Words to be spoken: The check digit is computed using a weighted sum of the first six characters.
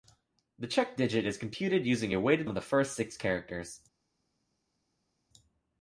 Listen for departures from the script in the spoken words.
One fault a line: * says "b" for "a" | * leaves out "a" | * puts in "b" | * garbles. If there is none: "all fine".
* leaves out "sum"